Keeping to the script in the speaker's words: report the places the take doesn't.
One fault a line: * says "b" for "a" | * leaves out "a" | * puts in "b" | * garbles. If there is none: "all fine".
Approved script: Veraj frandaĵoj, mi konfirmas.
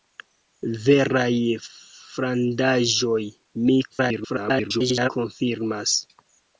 * garbles